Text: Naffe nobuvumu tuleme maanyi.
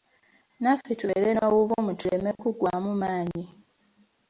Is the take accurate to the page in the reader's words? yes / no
no